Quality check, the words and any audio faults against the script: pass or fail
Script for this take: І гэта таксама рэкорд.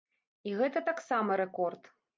pass